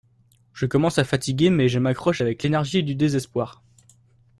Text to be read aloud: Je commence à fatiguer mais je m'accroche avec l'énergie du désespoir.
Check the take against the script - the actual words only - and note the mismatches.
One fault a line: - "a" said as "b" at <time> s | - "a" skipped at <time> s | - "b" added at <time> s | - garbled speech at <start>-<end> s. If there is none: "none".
none